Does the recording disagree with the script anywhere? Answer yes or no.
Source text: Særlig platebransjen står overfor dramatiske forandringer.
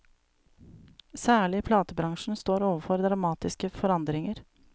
no